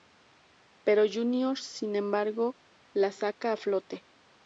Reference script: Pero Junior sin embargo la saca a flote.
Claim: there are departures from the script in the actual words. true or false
false